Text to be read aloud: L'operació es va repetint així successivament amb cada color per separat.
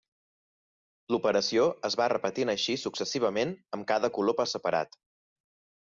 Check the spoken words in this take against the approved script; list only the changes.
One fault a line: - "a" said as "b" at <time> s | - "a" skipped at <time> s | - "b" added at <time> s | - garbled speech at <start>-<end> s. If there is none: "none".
none